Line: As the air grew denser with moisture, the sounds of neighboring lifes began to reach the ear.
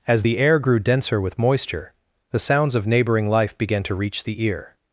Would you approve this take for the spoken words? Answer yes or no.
no